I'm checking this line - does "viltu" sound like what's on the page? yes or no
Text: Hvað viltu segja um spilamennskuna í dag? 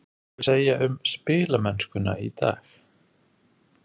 no